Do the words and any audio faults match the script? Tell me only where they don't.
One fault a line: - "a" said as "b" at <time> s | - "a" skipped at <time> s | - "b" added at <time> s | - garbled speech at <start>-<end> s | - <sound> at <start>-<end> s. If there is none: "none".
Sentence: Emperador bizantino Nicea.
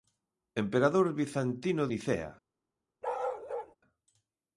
- bark at 3.0-3.8 s